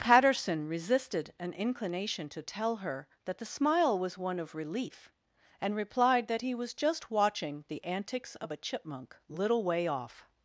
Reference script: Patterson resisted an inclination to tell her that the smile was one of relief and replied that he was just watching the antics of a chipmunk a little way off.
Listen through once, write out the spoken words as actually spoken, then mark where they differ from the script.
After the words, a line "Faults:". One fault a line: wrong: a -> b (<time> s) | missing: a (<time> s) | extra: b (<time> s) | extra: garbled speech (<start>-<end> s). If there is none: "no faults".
Patterson resisted an inclination to tell her that the smile was one of relief and replied that he was just watching the antics of a chipmunk little way off.
Faults:
missing: a (9.2 s)